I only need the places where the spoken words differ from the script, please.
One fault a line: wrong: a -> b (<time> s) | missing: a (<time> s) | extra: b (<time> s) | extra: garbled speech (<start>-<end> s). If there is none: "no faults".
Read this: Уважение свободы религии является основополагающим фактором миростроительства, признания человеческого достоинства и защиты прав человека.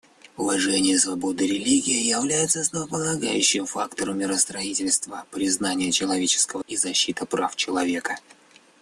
missing: достоинства (6.6 s)